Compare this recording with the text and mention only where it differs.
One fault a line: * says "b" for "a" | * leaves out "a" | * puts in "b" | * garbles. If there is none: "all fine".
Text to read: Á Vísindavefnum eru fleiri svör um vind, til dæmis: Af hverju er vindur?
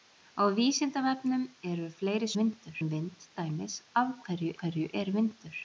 * says "vindur" for "svör"
* leaves out "til"
* puts in "hverju"